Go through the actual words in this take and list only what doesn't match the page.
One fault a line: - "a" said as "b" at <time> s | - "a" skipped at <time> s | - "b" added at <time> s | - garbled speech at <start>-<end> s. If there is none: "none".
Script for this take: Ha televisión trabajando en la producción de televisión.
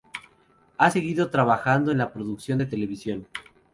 - "televisión" said as "seguido" at 0.9 s